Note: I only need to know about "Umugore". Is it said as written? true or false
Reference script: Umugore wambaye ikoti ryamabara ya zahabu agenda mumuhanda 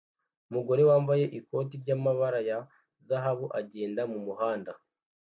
true